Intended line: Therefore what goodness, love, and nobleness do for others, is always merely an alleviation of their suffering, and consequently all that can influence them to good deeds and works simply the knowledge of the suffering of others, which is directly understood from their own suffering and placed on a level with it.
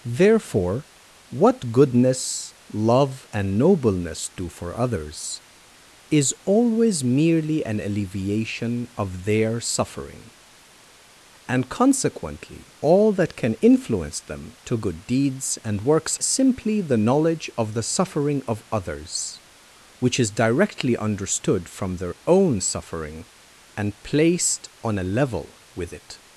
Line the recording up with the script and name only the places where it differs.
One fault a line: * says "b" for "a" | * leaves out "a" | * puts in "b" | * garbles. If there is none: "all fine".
all fine